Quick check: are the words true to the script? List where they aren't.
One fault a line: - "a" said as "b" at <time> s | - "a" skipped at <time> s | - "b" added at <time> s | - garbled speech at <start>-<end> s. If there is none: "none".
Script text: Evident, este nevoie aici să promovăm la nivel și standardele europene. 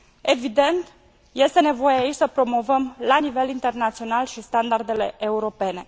- "internațional" added at 3.5 s